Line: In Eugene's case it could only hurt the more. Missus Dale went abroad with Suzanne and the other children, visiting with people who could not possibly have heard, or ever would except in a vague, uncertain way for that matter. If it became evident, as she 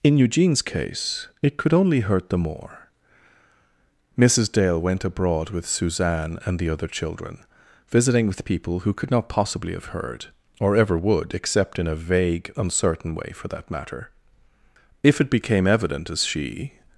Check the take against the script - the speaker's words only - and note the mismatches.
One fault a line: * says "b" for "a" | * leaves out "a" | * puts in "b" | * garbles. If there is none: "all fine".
all fine